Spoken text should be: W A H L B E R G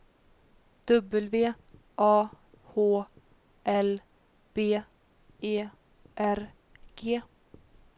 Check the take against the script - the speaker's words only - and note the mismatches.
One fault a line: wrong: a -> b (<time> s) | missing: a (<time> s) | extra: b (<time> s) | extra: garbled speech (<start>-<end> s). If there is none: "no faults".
no faults